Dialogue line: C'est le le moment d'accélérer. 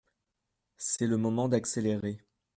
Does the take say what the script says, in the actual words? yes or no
no